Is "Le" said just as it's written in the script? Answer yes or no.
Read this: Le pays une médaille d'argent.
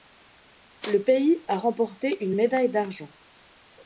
yes